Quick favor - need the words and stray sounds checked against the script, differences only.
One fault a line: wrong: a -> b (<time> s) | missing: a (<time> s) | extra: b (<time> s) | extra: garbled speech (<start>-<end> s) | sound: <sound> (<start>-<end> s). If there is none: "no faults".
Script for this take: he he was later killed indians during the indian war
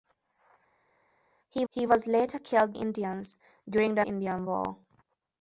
no faults